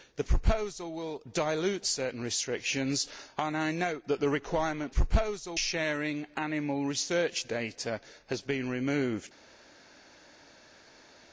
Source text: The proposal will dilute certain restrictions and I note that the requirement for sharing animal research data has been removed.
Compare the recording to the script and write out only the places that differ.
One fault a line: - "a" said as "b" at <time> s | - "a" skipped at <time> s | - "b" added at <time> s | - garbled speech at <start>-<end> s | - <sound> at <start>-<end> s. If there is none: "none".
- "for" said as "proposal" at 4.9 s